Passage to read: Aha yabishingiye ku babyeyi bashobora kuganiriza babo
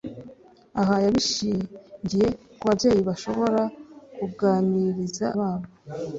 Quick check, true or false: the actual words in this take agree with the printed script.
true